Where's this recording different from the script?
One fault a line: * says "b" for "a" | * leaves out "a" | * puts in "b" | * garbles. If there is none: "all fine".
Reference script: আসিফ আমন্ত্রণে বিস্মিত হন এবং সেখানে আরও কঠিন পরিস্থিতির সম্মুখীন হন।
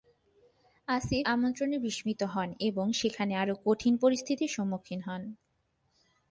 all fine